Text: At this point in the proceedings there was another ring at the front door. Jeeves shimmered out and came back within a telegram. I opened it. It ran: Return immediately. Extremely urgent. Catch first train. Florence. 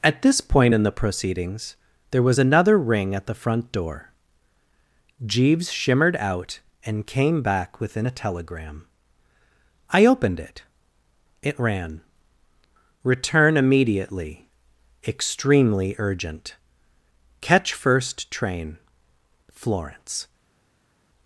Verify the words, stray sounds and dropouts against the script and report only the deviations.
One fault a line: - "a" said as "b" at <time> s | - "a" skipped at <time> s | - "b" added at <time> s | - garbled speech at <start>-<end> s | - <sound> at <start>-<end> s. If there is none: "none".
none